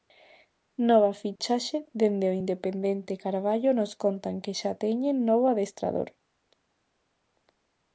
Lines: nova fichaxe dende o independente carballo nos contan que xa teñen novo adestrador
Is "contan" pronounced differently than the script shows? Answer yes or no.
no